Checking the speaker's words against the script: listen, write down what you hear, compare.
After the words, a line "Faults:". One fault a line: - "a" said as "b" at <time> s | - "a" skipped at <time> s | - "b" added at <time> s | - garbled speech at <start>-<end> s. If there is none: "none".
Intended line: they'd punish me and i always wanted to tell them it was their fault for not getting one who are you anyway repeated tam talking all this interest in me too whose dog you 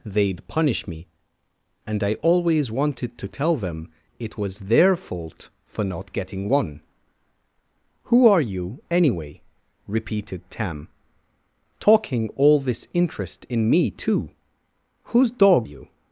they'd punish me and i always wanted to tell them it was their fault for not getting one who are you anyway repeated tam talking all this interest in me too whose dog you
Faults:
none